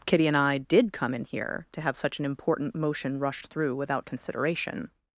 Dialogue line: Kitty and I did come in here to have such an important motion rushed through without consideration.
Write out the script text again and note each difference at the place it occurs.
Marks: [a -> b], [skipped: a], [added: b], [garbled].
Kitty and I did come in here to have such an important motion rushed through without consideration.